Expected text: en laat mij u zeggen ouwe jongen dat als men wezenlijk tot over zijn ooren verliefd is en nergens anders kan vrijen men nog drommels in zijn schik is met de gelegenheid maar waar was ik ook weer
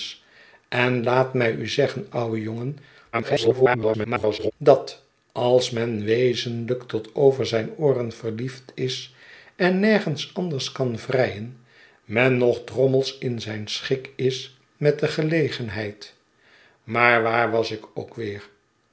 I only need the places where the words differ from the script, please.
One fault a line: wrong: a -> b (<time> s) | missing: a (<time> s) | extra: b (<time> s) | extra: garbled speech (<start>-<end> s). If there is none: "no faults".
extra: garbled speech (3.1-4.5 s)